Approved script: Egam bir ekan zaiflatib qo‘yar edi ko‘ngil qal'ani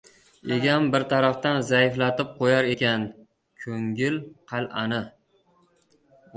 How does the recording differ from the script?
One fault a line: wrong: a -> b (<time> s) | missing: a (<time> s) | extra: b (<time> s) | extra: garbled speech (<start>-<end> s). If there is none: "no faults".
wrong: ekan -> tarafdan (1.1 s)
wrong: edi -> ekan (2.7 s)